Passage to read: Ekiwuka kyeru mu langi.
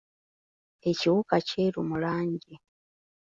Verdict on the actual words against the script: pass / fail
pass